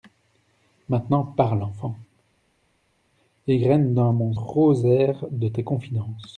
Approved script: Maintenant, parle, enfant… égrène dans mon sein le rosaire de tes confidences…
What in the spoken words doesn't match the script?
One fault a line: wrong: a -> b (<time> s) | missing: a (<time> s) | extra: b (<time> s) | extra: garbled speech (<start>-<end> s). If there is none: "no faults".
missing: sein le (4.3 s)